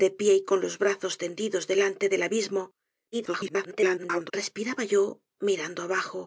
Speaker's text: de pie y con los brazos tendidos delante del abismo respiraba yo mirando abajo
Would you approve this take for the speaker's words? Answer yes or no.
no